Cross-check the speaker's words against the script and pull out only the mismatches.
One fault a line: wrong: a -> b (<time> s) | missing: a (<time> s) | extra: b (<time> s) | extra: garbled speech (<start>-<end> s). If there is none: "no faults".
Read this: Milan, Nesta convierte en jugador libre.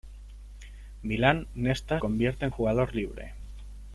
no faults